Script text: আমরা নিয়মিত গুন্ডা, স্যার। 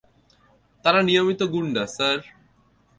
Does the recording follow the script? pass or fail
fail